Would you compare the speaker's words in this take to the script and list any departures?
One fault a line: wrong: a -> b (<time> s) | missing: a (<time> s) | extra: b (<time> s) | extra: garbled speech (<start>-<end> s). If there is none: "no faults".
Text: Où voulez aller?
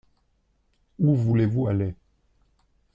extra: vous (1.4 s)